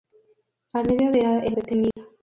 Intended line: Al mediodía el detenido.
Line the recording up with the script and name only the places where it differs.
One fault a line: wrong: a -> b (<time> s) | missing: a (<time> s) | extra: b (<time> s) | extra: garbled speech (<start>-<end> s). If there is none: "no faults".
no faults